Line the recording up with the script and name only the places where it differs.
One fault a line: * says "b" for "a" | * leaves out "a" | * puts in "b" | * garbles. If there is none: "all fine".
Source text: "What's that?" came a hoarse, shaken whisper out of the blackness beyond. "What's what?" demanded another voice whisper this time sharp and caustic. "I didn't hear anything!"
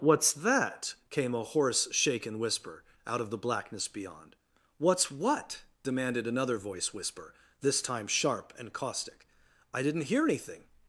all fine